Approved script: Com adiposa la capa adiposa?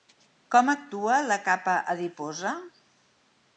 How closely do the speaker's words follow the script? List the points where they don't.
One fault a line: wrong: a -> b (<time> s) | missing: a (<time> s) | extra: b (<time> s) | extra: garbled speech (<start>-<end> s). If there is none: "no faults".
wrong: adiposa -> actua (0.7 s)